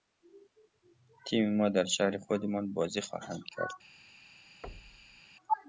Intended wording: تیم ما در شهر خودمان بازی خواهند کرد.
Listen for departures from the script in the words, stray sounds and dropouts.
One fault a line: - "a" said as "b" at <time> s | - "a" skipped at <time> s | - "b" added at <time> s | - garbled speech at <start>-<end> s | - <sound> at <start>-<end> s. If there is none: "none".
- thud at 4.6-5.2 s